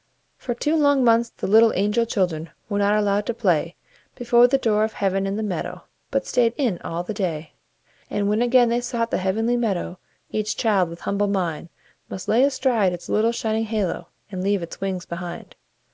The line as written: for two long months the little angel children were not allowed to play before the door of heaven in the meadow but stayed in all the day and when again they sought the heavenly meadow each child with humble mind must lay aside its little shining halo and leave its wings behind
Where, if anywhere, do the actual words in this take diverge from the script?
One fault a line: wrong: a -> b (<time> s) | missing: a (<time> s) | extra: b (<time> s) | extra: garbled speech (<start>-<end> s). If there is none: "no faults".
no faults